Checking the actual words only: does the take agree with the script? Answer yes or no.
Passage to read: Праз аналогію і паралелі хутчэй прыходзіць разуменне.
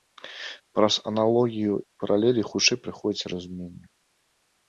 yes